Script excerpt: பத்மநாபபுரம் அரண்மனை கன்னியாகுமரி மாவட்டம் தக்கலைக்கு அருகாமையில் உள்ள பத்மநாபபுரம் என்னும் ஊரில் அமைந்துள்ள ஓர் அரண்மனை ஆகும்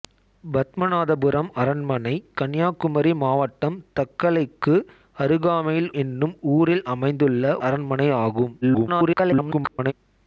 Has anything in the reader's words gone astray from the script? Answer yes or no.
yes